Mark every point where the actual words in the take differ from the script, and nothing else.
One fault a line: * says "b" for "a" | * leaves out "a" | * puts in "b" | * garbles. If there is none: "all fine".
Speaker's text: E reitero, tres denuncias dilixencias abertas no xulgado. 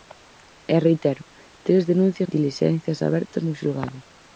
all fine